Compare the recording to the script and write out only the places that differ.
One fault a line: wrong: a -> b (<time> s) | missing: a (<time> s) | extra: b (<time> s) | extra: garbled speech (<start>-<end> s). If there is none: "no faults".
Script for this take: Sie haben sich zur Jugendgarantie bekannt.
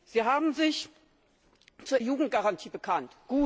no faults